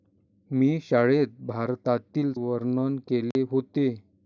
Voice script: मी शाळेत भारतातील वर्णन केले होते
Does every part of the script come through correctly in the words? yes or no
yes